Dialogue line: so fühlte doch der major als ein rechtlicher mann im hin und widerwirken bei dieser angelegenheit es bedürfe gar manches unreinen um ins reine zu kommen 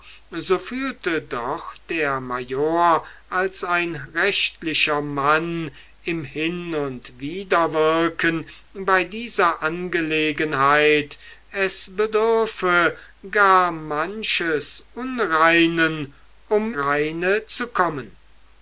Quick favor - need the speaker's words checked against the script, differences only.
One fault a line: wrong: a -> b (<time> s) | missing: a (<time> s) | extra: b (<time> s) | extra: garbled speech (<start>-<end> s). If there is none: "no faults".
missing: ins (16.7 s)